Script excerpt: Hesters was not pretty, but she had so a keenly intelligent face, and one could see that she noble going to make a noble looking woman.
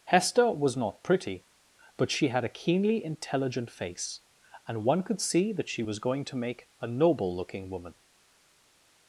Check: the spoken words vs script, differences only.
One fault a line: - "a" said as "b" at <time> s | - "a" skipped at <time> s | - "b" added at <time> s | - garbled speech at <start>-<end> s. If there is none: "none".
- "Hesters" said as "Hester" at 0.1 s
- "so" skipped at 2.4 s
- "noble" said as "was" at 5.8 s